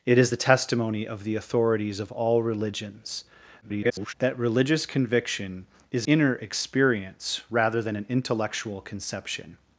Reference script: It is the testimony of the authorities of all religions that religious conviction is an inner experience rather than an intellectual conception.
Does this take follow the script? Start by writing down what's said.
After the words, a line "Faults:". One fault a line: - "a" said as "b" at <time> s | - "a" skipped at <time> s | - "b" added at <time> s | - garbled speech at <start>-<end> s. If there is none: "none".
It is the testimony of the authorities of all religions [garbled] that religious conviction is inner experience rather than an intellectual conception.
Faults:
- garbled speech at 3.6-4.1 s
- "an" skipped at 6.1 s